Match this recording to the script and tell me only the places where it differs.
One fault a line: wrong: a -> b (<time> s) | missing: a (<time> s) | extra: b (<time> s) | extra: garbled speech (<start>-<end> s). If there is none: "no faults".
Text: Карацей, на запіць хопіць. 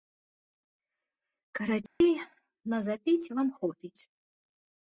extra: вам (3.4 s)